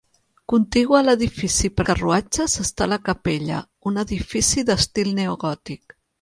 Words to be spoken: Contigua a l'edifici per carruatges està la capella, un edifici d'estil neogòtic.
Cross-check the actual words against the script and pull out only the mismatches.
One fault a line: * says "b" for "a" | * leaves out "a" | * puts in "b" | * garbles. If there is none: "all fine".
all fine